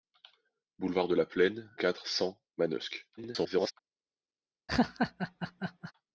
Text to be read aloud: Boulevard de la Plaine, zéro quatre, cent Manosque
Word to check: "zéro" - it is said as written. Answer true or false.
false